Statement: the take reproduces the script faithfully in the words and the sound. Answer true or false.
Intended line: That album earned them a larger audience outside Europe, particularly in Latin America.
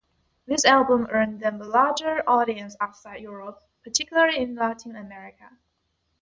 false